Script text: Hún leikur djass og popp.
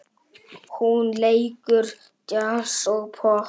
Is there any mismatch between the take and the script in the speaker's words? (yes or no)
no